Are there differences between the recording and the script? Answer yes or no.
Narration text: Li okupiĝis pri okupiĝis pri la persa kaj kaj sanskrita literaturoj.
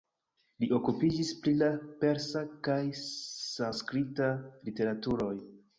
yes